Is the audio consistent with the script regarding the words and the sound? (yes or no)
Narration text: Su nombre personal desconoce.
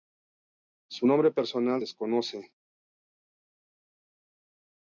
yes